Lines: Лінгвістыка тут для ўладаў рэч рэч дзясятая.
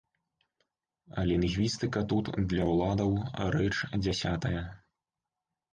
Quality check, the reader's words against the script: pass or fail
fail